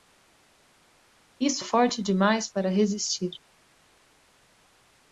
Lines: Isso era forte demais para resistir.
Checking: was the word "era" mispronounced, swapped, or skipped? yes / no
yes